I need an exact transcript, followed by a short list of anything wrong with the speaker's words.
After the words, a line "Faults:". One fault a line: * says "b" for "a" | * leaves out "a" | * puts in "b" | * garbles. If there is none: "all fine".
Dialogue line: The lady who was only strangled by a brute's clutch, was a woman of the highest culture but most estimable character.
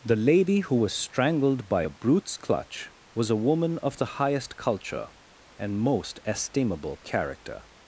The lady who was strangled by a brute's clutch, was a woman of the highest culture and most estimable character.
Faults:
* leaves out "only"
* says "and" for "but"